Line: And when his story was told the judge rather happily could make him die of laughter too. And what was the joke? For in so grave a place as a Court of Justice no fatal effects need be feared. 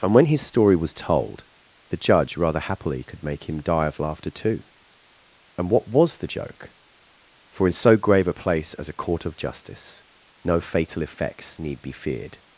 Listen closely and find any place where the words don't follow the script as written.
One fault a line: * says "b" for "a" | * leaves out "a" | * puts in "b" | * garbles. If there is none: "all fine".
all fine